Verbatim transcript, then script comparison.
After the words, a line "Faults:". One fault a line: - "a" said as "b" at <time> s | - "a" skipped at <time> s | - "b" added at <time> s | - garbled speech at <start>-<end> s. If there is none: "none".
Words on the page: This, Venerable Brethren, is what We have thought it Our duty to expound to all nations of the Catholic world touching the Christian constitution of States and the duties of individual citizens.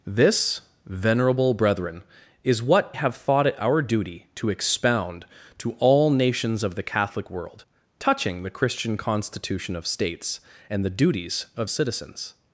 This, Venerable Brethren, is what Have thought it Our duty to expound to all nations of the Catholic world touching the Christian constitution of States and the duties of citizens.
Faults:
- "We" skipped at 3.0 s
- "individual" skipped at 11.7 s